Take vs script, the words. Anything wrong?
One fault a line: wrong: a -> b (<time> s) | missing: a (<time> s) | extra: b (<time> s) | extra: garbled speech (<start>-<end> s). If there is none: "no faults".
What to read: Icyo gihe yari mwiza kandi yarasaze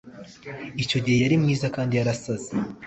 no faults